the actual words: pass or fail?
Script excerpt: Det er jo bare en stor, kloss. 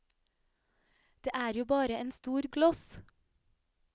pass